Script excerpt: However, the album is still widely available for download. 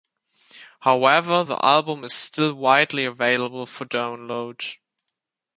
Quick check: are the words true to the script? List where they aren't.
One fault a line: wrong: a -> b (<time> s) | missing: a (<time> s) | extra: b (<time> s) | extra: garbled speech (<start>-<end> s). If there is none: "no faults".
no faults